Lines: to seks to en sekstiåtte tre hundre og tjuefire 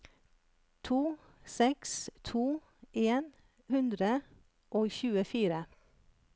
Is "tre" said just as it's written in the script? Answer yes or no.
no